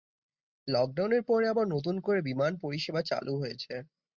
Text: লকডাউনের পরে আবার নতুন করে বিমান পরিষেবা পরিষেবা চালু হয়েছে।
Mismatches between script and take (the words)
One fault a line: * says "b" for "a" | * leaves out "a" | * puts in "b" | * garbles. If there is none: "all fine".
* leaves out "পরিষেবা"